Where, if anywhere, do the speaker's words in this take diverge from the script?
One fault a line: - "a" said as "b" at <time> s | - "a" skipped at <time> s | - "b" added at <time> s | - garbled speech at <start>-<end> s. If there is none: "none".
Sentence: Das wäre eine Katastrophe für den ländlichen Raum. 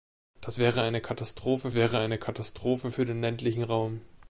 - "wäre eine Katastrophe" added at 1.7 s